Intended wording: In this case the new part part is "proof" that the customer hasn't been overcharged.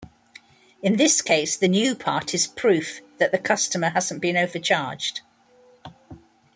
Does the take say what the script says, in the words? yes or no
no